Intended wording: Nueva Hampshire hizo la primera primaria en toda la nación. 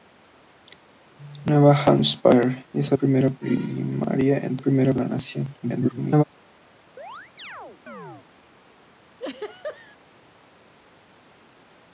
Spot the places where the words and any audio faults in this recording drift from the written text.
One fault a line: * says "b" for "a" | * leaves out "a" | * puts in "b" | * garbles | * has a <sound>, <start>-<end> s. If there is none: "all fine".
* leaves out "la"
* says "primera" for "toda"
* garbles
* has a chirp, 7.0-8.3 s
* has a laugh, 9.2-10.0 s